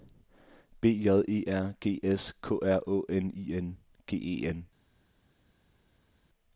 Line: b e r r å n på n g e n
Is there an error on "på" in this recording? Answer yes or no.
yes